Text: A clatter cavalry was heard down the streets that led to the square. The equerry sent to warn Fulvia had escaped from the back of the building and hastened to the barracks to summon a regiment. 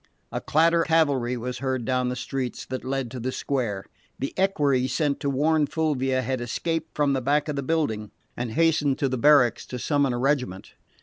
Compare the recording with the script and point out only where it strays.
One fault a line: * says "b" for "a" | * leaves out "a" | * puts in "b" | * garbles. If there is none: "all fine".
all fine